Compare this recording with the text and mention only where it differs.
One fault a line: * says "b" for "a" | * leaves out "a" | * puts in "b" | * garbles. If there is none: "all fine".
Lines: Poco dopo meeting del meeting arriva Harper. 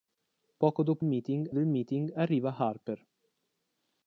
all fine